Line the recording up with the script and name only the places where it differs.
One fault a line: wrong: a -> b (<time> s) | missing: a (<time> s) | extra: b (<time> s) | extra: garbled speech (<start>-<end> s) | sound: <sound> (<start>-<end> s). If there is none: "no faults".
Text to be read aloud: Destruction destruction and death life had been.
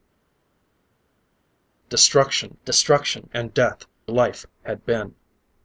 no faults